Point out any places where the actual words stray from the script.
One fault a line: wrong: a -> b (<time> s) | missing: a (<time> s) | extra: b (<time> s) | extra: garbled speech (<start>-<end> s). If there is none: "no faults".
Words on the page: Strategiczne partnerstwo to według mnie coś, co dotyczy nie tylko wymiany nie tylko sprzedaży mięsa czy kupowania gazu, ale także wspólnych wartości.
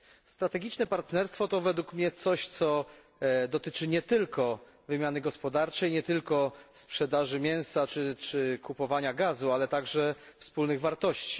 extra: gospodarczej (5.2 s)